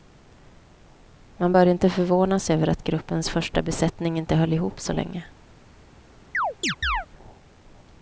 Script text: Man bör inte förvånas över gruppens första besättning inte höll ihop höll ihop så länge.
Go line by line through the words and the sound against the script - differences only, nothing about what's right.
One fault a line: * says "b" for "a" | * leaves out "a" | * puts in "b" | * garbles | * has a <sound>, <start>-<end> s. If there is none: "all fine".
* puts in "att"
* leaves out "höll ihop"
* has a chirp, 6.3-7.1 s